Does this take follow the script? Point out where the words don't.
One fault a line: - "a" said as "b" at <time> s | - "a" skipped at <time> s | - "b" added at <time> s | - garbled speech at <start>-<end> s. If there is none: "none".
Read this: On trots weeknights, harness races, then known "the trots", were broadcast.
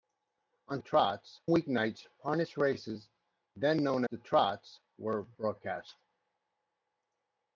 none